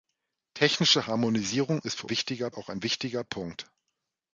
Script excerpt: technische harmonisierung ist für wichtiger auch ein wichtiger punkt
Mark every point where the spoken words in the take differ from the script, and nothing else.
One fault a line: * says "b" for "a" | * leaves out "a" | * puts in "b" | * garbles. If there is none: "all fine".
all fine